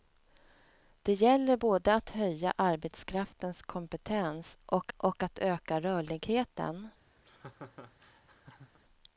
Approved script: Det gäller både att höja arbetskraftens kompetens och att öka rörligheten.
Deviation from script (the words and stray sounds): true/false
true